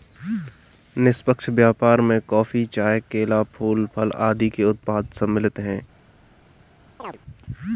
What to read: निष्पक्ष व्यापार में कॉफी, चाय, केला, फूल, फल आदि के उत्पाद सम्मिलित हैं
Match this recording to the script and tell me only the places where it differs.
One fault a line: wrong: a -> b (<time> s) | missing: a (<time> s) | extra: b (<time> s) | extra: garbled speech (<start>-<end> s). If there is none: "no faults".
no faults